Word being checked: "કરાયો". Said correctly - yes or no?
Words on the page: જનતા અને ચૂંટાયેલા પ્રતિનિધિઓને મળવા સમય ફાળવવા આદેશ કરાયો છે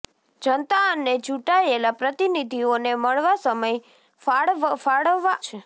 no